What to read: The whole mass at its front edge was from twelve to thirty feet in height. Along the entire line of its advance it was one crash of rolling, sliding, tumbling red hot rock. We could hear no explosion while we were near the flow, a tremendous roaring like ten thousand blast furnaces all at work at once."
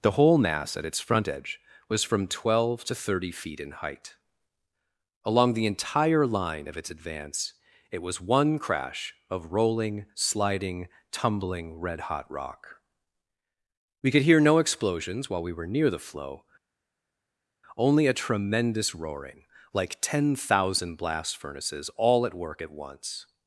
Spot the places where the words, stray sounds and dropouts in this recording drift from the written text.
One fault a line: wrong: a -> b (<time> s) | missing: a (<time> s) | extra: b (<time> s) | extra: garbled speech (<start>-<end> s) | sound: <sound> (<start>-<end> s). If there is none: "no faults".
wrong: explosion -> explosions (14.6 s)
extra: only (17.8 s)